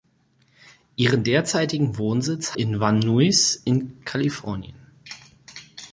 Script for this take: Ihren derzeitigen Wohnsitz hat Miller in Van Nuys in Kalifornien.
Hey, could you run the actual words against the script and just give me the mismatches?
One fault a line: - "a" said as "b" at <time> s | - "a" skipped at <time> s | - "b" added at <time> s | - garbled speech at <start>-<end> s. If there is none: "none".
- "hat Miller" skipped at 2.6 s